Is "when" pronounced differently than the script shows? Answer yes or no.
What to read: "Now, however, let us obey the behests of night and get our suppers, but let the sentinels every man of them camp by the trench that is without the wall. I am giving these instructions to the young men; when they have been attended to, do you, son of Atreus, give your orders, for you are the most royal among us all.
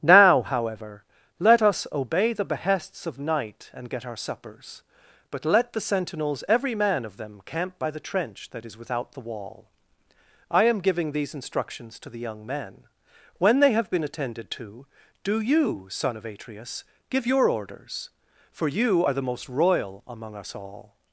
no